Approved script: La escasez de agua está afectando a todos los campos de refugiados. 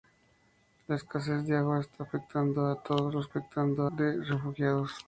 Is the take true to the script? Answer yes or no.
no